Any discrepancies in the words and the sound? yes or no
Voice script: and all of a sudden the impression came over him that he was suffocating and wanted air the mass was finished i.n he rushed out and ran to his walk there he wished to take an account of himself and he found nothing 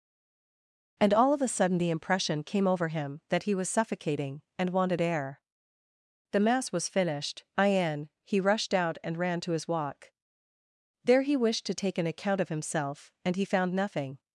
no